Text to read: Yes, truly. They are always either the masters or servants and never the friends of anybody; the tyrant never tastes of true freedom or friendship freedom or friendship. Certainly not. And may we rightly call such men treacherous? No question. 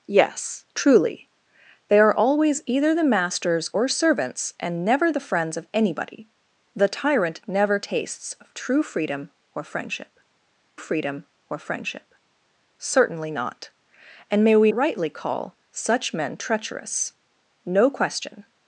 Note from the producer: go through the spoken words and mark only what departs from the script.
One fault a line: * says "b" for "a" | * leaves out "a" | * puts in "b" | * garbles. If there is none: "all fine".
all fine